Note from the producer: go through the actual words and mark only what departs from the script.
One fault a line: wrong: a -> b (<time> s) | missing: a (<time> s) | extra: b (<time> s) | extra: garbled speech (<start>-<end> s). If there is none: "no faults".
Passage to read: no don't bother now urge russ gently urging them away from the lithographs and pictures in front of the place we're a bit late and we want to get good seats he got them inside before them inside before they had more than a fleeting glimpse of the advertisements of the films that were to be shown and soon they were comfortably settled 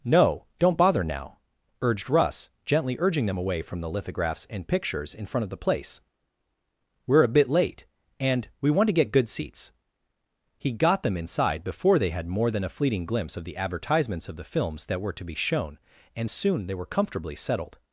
wrong: urge -> urged (1.8 s)
missing: them inside before (12.0 s)